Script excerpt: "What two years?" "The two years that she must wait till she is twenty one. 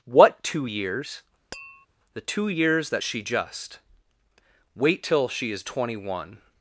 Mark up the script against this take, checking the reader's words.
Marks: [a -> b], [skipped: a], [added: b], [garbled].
"What two years?" "The two years that she [must -> just] wait till she is twenty one.